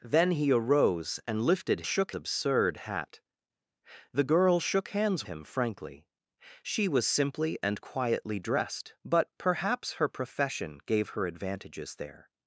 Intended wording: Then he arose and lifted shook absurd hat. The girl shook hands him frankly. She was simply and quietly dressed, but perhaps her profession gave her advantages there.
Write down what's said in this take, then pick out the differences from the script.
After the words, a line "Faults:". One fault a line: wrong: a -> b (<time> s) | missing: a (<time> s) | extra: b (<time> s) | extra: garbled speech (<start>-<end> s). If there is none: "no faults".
Then he arose and lifted shook absurd hat. The girl shook hands him frankly. She was simply and quietly dressed, but perhaps her profession gave her advantages there.
Faults:
no faults